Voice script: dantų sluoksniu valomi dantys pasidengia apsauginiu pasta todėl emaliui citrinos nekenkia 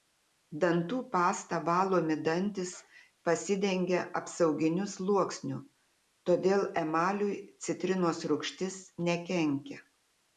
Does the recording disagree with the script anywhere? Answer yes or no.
yes